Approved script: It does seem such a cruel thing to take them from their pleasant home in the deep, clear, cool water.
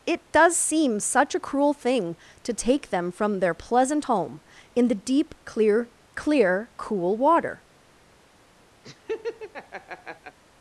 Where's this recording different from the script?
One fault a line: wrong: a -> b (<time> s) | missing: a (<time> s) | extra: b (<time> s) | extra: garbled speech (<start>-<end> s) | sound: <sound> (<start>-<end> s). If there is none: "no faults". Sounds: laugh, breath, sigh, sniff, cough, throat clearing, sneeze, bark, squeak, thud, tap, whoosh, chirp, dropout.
extra: clear (6.1 s)
sound: laugh (8.8-10.4 s)